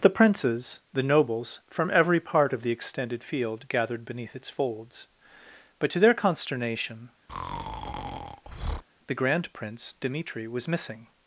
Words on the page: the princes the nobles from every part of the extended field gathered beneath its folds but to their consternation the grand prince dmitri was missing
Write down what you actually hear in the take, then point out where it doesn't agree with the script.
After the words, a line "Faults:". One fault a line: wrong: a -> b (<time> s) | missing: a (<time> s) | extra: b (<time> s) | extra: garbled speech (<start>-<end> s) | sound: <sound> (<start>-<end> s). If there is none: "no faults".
the princes the nobles from every part of the extended field gathered beneath its folds but to their consternation the grand prince dmitri was missing
Faults:
sound: breath (7.3-8.8 s)